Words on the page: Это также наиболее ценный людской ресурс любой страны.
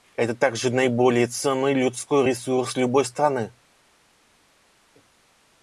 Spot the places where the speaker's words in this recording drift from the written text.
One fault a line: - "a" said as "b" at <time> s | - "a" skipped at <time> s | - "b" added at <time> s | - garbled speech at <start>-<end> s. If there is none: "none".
none